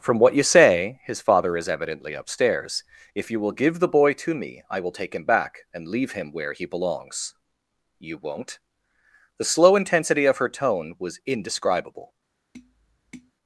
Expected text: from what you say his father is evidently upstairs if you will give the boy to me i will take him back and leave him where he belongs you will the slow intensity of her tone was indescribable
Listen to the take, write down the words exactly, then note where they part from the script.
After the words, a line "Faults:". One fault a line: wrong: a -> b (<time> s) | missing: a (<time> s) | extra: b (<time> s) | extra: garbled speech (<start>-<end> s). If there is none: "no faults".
from what you say his father is evidently upstairs if you will give the boy to me i will take him back and leave him where he belongs you won't the slow intensity of her tone was indescribable
Faults:
wrong: will -> won't (8.2 s)